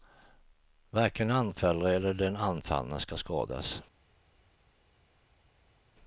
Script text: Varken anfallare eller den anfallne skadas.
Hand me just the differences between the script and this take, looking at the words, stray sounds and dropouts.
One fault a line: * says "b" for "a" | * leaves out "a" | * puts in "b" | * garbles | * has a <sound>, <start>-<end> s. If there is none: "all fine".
* puts in "ska"